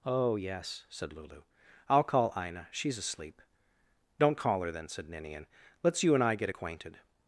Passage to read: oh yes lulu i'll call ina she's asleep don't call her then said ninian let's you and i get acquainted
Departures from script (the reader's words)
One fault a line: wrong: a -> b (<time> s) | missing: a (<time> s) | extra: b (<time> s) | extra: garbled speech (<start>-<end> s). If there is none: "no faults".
extra: said (0.9 s)